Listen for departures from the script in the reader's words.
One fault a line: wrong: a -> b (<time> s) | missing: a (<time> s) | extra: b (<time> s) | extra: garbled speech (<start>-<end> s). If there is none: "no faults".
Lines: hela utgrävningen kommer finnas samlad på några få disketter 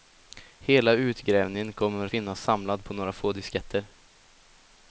no faults